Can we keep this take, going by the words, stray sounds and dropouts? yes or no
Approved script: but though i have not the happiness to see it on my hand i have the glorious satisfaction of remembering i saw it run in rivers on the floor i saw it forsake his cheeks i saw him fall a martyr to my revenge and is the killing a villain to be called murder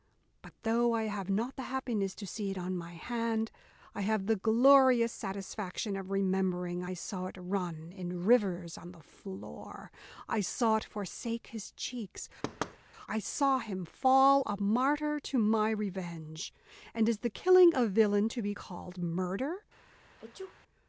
no